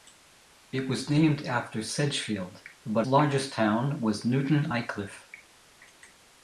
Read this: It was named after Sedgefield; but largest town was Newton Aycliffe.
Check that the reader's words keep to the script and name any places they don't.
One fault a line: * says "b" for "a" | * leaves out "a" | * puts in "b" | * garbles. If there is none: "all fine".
all fine